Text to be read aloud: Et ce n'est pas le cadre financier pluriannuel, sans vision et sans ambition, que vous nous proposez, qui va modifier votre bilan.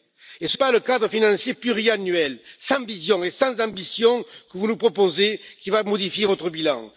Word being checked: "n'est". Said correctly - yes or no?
no